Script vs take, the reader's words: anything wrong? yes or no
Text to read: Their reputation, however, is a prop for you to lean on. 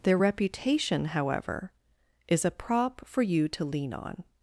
no